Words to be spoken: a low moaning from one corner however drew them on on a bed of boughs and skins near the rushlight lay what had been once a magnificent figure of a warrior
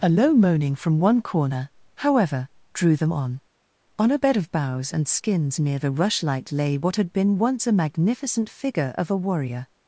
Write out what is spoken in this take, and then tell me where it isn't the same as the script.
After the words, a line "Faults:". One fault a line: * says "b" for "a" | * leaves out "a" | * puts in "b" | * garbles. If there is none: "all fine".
a low moaning from one corner however drew them on on a bed of boughs and skins near the rushlight lay what had been once a magnificent figure of a warrior
Faults:
all fine